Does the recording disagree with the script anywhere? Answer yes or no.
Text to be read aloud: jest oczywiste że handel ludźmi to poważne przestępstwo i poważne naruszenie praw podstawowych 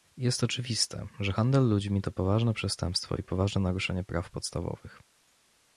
no